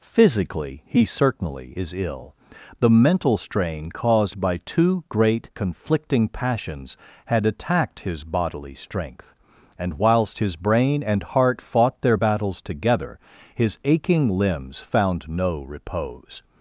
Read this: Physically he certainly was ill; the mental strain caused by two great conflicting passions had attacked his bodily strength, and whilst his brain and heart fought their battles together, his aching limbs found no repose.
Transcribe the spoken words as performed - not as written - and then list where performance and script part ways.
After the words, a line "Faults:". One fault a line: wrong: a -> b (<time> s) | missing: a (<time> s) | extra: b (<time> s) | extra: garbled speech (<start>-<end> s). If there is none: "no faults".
Physically he certainly is ill; the mental strain caused by two great conflicting passions had attacked his bodily strength, and whilst his brain and heart fought their battles together, his aching limbs found no repose.
Faults:
wrong: was -> is (1.8 s)